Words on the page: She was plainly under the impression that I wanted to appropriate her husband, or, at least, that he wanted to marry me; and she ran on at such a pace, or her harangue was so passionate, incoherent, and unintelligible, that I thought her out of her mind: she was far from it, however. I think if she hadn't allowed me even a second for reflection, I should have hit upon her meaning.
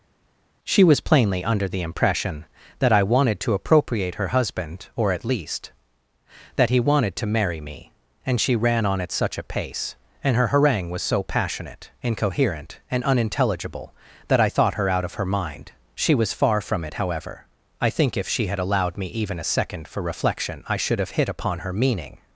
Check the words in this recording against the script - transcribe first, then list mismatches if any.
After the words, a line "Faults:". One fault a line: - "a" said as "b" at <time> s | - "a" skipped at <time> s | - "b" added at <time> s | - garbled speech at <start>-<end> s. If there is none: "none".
She was plainly under the impression that I wanted to appropriate her husband, or, at least, that he wanted to marry me; and she ran on at such a pace, and her harangue was so passionate, incoherent, and unintelligible, that I thought her out of her mind: she was far from it, however. I think if she had allowed me even a second for reflection, I should have hit upon her meaning.
Faults:
- "or" said as "and" at 10.2 s
- "hadn't" said as "had" at 18.5 s